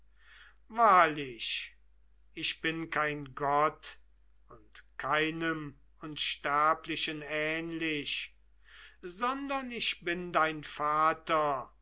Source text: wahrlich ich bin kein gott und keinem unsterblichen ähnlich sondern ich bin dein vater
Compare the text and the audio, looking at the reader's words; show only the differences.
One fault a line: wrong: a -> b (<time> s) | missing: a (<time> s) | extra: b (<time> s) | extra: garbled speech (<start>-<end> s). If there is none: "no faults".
no faults